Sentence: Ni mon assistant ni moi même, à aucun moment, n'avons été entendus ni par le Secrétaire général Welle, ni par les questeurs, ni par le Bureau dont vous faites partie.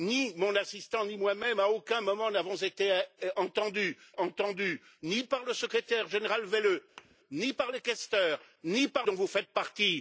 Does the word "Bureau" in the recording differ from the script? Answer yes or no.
yes